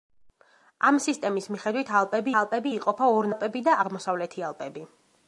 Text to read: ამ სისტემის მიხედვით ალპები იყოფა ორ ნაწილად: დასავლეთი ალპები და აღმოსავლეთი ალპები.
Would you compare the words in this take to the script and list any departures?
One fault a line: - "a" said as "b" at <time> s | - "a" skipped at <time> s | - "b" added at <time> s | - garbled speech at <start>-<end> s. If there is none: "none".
- "ალპები" added at 2.4 s
- "ნაწილად დასავლეთი" skipped at 3.3 s